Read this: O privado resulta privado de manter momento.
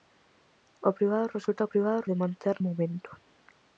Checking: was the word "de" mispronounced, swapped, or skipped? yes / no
no